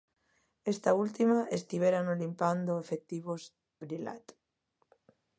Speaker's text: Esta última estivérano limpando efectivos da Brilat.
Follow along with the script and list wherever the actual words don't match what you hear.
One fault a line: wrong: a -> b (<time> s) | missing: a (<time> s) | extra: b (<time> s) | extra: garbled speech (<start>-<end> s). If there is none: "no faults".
missing: da (3.4 s)